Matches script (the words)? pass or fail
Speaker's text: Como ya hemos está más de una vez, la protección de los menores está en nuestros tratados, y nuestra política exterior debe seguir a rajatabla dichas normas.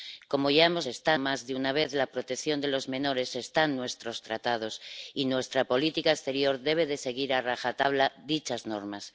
pass